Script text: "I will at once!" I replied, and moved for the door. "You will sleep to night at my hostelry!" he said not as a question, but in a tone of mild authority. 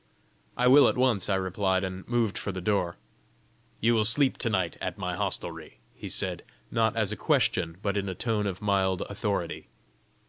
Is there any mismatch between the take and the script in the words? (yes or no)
no